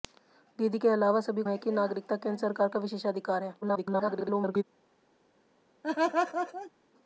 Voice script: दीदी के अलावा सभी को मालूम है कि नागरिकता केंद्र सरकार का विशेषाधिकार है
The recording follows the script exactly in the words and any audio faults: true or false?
false